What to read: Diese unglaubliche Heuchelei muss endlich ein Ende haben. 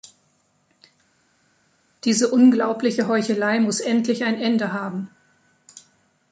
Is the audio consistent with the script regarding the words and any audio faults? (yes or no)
yes